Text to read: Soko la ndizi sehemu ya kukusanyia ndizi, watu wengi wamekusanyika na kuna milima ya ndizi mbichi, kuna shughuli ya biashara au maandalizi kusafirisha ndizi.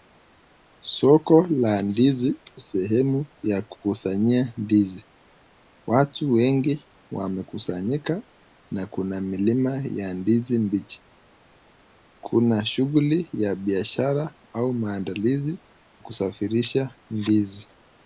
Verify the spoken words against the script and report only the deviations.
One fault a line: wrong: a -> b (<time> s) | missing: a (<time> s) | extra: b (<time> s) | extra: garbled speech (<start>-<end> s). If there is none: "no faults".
no faults